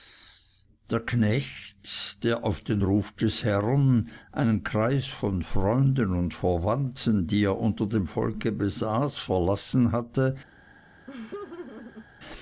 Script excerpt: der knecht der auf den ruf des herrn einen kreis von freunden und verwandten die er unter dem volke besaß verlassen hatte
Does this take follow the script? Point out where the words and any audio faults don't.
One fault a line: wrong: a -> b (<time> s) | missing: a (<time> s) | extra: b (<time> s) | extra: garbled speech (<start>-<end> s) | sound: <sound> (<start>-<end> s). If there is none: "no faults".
sound: laugh (11.1-12.1 s)